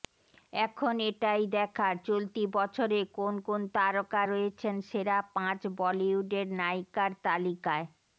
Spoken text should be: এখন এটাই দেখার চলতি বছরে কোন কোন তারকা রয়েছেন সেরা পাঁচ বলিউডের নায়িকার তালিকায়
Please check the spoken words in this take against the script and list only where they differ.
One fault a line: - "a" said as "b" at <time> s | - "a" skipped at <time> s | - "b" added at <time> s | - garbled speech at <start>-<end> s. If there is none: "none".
none